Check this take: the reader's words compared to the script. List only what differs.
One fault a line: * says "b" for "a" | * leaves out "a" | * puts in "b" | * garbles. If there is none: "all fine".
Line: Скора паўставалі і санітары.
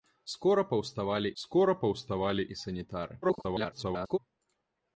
* puts in "скора паўставалі"
* garbles